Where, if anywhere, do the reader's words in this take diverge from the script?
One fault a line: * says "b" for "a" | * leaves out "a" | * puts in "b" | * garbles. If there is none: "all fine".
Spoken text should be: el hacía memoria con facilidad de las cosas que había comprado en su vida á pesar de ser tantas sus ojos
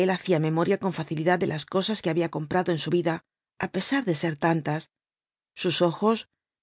all fine